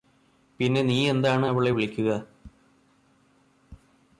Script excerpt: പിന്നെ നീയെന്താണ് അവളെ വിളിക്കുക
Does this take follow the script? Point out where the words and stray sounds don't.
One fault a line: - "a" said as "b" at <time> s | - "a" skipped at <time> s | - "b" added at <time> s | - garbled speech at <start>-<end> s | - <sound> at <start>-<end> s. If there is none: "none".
none